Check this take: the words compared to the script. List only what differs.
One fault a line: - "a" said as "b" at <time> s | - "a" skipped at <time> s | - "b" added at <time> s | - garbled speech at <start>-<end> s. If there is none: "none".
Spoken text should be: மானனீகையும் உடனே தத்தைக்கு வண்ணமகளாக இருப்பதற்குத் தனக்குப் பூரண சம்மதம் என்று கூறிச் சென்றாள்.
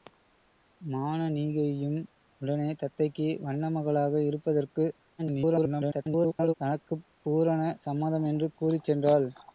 - garbled speech at 5.2-6.5 s